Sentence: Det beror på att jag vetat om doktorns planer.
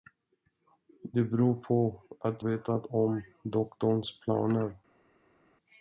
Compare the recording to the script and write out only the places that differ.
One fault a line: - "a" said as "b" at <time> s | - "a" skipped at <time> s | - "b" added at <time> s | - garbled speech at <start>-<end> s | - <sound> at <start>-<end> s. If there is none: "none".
- "jag" skipped at 2.4 s